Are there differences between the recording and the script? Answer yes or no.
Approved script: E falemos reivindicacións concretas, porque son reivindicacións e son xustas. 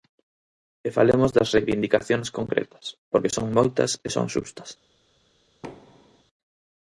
yes